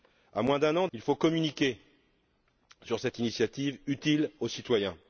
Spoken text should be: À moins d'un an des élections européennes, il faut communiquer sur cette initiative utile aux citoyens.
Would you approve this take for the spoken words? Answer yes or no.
no